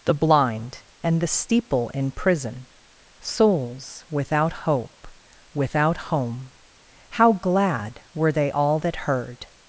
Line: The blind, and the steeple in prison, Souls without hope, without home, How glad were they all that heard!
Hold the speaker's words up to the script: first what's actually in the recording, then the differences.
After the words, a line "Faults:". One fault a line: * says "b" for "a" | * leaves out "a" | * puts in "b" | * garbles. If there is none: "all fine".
The blind, and the steeple in prison, Souls without hope, without home, How glad were they all that heard!
Faults:
all fine